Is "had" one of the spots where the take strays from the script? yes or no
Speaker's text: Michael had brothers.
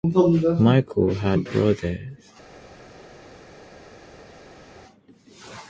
no